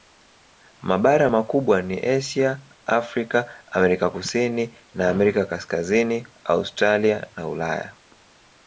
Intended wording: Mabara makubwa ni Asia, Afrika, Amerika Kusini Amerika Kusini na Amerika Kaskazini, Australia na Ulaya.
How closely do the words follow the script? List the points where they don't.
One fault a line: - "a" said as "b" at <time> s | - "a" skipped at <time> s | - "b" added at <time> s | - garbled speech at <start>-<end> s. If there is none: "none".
- "Amerika Kusini" skipped at 4.8 s